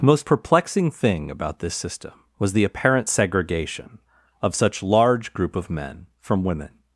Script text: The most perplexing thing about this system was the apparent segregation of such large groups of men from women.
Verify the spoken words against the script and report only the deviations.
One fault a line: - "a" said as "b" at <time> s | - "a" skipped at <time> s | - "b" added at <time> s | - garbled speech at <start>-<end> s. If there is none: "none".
- "groups" said as "group" at 5.3 s